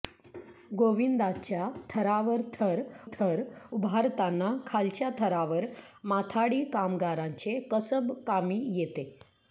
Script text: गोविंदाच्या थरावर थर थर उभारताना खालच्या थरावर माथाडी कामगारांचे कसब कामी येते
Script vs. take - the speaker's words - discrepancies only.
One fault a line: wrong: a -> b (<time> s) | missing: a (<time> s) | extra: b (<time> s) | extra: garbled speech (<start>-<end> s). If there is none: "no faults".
no faults